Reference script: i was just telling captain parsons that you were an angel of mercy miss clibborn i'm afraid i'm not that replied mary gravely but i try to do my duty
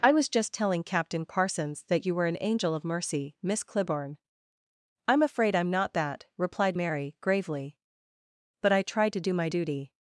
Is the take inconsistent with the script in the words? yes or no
no